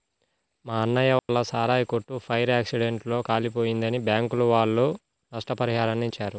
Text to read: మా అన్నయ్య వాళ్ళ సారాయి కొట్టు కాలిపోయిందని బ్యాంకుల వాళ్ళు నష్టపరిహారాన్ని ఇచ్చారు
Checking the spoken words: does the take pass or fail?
fail